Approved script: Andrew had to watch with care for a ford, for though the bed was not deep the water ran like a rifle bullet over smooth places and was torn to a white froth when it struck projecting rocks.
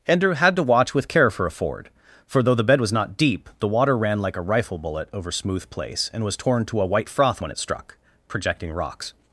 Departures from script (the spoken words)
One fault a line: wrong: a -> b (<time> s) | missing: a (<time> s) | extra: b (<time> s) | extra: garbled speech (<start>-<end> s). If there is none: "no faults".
wrong: places -> place (5.7 s)